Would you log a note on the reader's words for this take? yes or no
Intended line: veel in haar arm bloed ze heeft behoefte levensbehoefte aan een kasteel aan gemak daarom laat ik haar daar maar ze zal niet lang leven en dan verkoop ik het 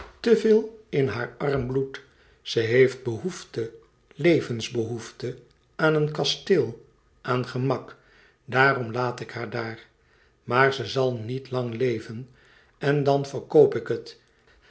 no